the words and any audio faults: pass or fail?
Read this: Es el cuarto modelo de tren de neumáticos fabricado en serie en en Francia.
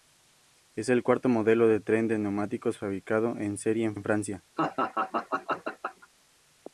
fail